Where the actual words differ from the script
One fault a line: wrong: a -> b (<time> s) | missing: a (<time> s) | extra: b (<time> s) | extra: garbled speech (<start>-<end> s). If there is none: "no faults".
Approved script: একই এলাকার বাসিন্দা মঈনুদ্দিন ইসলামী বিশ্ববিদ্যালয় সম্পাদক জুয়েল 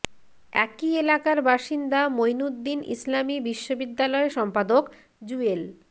no faults